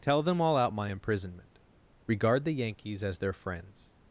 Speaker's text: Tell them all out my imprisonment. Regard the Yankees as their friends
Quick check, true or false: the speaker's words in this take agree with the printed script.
true